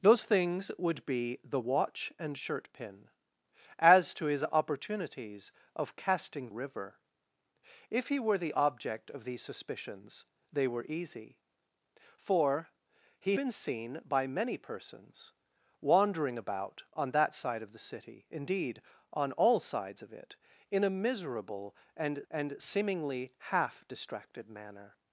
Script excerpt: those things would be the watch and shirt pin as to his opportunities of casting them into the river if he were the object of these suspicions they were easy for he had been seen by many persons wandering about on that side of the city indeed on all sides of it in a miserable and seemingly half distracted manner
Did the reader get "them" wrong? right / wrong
wrong